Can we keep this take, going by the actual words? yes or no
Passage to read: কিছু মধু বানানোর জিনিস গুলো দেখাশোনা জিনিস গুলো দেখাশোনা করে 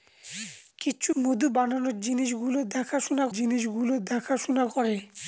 yes